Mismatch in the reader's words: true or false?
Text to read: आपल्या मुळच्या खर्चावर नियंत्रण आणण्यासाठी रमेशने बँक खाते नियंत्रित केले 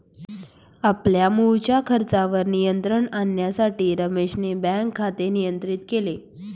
false